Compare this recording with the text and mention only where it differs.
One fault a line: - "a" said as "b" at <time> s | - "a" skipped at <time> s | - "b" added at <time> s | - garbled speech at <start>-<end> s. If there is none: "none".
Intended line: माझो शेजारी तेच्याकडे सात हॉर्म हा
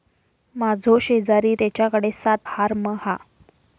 none